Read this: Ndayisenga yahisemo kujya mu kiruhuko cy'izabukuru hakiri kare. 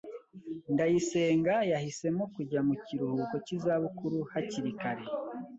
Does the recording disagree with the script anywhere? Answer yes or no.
no